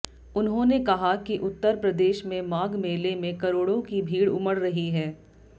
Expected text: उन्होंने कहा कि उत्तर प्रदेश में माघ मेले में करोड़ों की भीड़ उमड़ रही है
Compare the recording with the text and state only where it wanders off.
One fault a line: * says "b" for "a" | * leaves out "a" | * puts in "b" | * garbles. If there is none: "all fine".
all fine